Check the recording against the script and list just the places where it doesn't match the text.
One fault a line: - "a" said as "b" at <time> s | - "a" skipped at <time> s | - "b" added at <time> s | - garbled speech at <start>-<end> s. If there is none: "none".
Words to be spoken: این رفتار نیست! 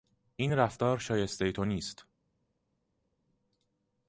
- "شایستهی تو" added at 1.0 s